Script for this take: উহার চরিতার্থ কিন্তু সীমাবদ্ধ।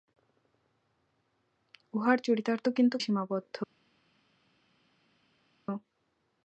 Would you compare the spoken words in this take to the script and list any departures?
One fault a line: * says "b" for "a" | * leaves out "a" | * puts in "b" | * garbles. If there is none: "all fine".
all fine